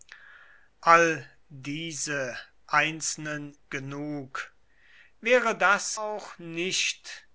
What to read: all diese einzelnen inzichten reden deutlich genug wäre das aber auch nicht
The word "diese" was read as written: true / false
true